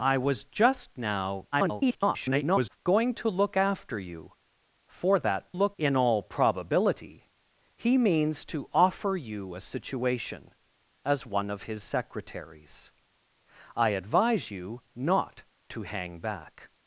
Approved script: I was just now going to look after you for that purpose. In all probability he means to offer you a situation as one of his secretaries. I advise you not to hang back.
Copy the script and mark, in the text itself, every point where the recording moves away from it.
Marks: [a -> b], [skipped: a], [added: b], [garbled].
I was just now [garbled] going to look after you for that [purpose. -> look] In all probability he means to offer you a situation as one of his secretaries. I advise you not to hang back.